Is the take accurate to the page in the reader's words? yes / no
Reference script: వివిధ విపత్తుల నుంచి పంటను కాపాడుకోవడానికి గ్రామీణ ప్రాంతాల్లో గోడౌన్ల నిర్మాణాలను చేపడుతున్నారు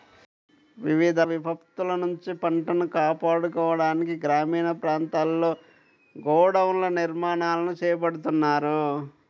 yes